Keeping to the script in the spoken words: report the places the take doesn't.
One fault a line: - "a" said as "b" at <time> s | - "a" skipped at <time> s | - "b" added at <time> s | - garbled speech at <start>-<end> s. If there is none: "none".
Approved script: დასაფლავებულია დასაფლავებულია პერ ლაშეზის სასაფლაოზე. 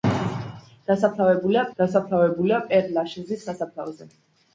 none